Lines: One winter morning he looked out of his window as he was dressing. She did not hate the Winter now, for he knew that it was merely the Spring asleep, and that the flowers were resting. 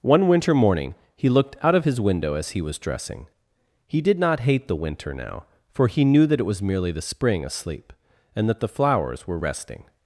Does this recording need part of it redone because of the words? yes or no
yes